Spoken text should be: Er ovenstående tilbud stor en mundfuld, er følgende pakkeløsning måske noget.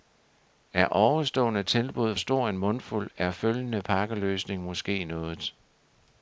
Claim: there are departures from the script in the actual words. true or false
false